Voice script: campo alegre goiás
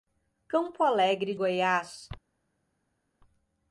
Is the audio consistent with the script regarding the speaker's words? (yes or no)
yes